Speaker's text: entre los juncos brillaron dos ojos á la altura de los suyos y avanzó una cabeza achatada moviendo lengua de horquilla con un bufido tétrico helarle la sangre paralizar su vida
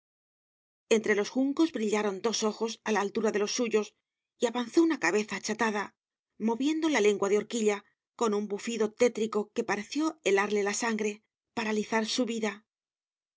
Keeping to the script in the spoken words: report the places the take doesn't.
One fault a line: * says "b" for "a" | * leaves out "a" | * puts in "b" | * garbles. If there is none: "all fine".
* puts in "la"
* puts in "que pareció"